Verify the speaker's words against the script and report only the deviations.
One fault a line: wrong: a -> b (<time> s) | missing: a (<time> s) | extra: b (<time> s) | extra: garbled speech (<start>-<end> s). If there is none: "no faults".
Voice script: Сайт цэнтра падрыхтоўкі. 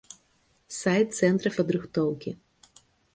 no faults